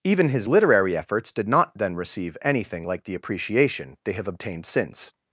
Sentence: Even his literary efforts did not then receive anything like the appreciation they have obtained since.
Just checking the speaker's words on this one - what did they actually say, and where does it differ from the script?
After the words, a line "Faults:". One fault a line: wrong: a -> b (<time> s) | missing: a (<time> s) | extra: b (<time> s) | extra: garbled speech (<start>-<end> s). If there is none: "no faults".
Even his literary efforts did not then receive anything like the appreciation they have obtained since.
Faults:
no faults